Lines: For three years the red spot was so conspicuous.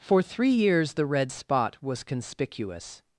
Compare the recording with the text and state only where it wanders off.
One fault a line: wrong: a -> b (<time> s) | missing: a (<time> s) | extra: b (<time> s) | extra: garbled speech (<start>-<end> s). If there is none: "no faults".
missing: so (2.0 s)